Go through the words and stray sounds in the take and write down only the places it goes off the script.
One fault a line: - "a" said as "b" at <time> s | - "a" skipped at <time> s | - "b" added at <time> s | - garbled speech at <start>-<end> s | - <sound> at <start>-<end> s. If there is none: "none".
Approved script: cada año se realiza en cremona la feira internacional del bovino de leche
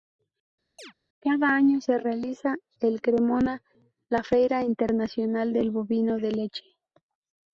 - chirp at 0.8-0.9 s